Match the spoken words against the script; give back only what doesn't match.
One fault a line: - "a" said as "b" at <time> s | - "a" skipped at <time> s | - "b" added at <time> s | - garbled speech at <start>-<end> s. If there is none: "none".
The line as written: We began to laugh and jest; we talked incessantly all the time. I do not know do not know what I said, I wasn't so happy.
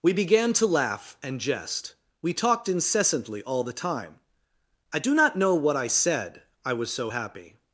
- "do not know" skipped at 5.5 s
- "wasn't" said as "was" at 6.7 s